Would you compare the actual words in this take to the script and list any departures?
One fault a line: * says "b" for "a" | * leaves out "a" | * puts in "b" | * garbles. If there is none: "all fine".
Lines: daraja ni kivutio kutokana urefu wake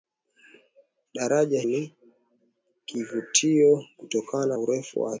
all fine